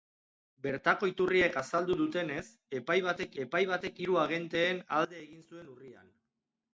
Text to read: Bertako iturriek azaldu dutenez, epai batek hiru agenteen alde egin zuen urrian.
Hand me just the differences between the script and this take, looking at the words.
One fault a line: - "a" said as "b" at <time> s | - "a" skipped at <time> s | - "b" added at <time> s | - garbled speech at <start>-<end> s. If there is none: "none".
- "epai batek" added at 3.4 s